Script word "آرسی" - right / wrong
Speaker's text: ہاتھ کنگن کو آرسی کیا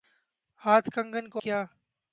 wrong